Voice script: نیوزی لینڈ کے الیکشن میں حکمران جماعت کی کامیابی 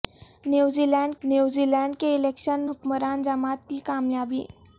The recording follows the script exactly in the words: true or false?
false